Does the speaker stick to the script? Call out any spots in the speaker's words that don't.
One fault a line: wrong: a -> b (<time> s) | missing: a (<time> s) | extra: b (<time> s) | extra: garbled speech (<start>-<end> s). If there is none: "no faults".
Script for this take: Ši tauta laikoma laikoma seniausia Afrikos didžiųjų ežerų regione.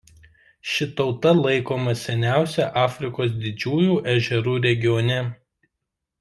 missing: laikoma (2.0 s)